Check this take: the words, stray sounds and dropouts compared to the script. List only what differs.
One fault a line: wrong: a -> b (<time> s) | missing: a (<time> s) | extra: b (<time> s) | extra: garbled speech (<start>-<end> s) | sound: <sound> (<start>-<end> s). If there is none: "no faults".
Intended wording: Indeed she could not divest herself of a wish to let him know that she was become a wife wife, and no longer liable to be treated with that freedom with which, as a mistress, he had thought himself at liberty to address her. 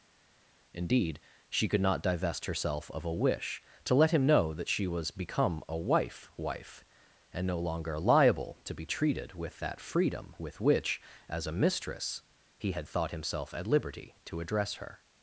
no faults